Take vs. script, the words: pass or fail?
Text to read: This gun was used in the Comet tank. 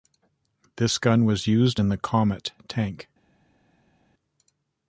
pass